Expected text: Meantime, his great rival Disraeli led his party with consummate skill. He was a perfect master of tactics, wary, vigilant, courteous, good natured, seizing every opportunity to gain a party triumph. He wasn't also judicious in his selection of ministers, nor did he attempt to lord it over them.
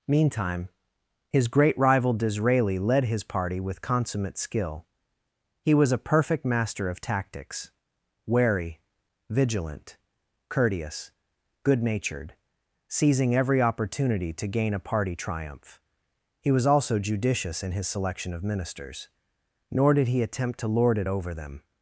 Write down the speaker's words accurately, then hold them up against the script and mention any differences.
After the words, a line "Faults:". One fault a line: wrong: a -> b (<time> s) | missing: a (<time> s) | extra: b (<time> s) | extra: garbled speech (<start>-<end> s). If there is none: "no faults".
Meantime, his great rival Disraeli led his party with consummate skill. He was a perfect master of tactics, wary, vigilant, courteous, good natured, seizing every opportunity to gain a party triumph. He was also judicious in his selection of ministers, nor did he attempt to lord it over them.
Faults:
wrong: wasn't -> was (16.5 s)